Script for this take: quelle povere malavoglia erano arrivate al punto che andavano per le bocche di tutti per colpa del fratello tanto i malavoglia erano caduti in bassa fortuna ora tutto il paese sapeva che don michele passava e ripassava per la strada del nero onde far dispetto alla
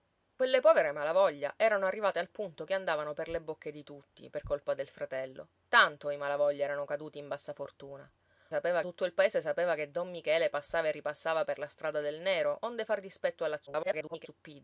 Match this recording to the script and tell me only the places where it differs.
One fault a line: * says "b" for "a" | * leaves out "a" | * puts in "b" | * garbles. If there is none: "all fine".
* says "sapeva" for "ora"
* garbles